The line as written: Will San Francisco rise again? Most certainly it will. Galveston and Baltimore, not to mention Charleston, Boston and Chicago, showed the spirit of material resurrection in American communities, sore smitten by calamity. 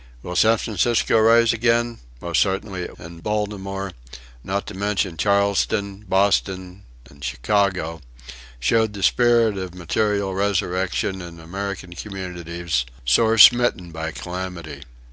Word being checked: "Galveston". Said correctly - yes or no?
no